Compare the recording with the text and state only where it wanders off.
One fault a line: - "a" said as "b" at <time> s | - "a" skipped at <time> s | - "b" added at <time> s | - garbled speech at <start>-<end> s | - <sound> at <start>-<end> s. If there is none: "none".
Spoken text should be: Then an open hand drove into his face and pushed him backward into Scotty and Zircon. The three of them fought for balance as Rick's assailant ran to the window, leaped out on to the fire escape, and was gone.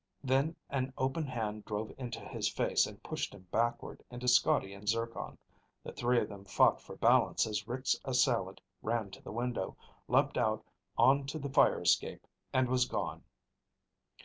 none